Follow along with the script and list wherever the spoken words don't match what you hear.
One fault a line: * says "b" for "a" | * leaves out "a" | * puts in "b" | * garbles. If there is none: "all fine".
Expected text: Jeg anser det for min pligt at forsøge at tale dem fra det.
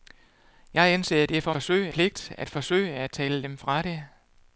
* says "forsøge" for "min"